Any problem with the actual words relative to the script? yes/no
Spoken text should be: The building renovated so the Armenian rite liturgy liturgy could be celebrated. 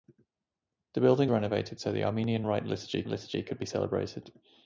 no